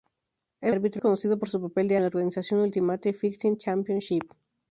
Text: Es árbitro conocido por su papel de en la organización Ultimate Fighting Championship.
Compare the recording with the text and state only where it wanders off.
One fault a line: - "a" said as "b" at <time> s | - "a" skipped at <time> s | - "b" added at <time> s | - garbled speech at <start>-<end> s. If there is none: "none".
none